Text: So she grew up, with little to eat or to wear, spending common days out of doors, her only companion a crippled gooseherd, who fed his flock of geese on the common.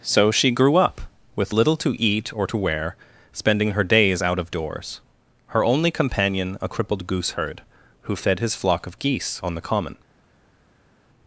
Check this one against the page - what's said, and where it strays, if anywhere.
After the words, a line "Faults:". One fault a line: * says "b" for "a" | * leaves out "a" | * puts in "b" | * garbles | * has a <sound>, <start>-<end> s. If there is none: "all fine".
So she grew up, with little to eat or to wear, spending her days out of doors, her only companion a crippled gooseherd, who fed his flock of geese on the common.
Faults:
* says "her" for "common"